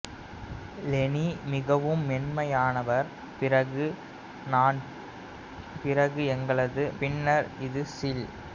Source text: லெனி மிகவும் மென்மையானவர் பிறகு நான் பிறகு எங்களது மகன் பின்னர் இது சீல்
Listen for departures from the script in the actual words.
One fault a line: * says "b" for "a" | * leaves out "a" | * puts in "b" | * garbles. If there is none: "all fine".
* leaves out "மகன்"